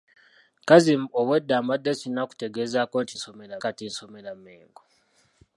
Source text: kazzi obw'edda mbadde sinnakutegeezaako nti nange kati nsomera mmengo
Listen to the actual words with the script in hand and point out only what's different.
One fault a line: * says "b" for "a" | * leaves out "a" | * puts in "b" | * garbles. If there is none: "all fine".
* says "nsomera" for "nange"